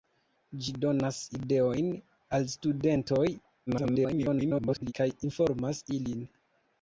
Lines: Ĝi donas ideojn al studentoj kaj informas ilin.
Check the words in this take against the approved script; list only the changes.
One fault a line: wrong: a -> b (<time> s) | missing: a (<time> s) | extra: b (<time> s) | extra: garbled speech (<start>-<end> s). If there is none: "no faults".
extra: garbled speech (3.7-4.9 s)